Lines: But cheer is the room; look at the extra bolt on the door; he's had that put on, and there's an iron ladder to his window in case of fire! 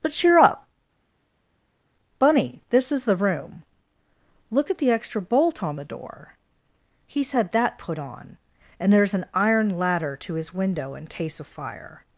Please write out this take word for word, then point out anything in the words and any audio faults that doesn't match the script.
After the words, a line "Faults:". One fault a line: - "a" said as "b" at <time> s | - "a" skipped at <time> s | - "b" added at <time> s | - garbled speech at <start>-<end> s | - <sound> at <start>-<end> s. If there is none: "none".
But cheer up, Bunny! This is the room; look at the extra bolt on the door; he's had that put on, and there's an iron ladder to his window in case of fire!
Faults:
- "up Bunny This" added at 0.4 s